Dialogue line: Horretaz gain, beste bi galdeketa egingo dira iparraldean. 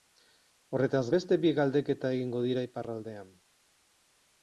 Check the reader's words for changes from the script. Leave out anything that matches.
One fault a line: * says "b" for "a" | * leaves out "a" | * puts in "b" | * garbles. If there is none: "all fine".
* leaves out "gain"